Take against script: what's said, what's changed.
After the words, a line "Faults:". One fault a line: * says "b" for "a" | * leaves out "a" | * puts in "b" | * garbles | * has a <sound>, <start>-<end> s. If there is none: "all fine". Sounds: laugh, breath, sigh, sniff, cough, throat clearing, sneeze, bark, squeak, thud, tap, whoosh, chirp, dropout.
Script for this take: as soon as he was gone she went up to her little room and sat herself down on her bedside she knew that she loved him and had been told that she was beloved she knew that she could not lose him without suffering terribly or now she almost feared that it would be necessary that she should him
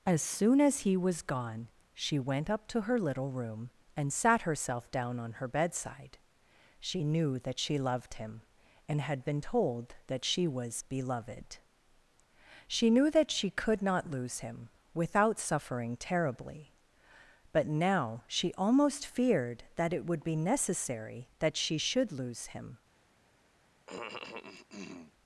as soon as he was gone she went up to her little room and sat herself down on her bedside she knew that she loved him and had been told that she was beloved she knew that she could not lose him without suffering terribly but now she almost feared that it would be necessary that she should lose him
Faults:
* says "but" for "or"
* puts in "lose"
* has a cough, 23.9-25.1 s